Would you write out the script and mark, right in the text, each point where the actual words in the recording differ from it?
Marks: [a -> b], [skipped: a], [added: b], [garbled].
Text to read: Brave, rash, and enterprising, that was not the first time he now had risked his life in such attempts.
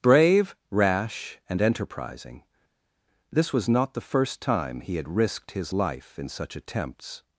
Brave, rash, and enterprising, [that -> this] was not the first time he [skipped: now] had risked his life in such attempts.